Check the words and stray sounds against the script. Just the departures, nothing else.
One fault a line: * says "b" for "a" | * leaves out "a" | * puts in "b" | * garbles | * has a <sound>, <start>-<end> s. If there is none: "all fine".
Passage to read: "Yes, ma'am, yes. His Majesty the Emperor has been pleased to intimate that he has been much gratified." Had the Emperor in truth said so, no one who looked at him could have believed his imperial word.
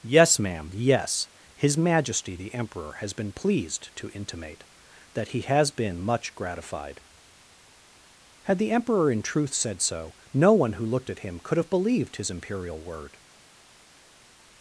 all fine